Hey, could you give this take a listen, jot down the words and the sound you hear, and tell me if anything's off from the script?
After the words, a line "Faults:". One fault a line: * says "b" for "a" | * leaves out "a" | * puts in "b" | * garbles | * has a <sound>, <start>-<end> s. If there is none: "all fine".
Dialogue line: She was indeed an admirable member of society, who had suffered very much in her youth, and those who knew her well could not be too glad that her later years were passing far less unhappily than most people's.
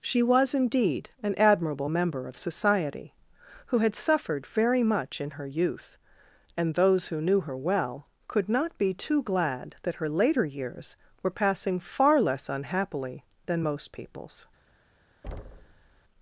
She was indeed an admirable member of society, who had suffered very much in her youth, and those who knew her well could not be too glad that her later years were passing far less unhappily than most people's.
Faults:
* has a thud, 15.2-16.0 s